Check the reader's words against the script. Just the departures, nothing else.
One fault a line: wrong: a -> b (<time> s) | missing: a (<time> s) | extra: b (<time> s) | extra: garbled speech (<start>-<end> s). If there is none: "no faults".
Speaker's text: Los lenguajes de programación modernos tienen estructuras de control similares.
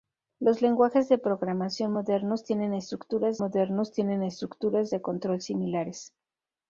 extra: modernos tienen estructuras (3.4 s)